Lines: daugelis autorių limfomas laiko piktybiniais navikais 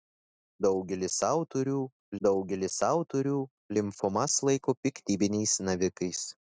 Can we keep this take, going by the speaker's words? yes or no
no